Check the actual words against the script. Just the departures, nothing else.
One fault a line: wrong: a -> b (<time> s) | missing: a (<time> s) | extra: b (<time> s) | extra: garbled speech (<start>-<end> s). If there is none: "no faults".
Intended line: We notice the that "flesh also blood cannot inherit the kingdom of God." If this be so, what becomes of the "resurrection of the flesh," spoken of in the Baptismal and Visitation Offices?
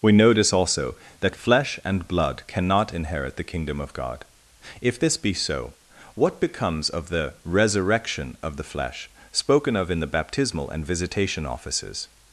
wrong: the -> also (0.5 s)
wrong: also -> and (1.8 s)